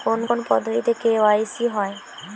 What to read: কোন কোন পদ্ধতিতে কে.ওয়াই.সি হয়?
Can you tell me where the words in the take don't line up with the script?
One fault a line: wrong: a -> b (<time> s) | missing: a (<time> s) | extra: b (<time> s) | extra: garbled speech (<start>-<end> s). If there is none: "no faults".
no faults